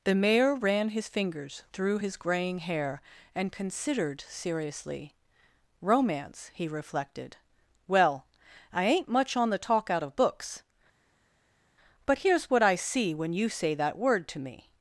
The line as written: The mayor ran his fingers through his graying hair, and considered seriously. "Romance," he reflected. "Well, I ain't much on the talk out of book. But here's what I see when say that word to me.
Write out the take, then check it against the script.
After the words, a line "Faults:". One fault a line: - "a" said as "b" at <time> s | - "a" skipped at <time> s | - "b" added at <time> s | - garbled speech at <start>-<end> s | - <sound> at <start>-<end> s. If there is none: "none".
The mayor ran his fingers through his graying hair, and considered seriously. "Romance," he reflected. "Well, I ain't much on the talk out of books. But here's what I see when you say that word to me.
Faults:
- "book" said as "books" at 10.2 s
- "you" added at 13.3 s